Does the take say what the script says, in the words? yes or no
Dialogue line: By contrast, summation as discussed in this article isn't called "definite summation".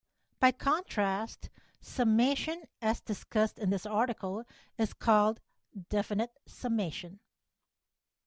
no